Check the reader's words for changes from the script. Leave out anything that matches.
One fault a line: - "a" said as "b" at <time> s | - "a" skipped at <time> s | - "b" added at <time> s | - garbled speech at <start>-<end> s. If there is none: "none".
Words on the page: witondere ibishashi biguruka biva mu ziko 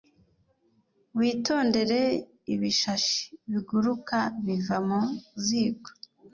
none